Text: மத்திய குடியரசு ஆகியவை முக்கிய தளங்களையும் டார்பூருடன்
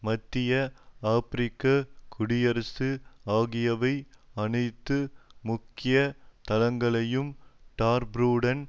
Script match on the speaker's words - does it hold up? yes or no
no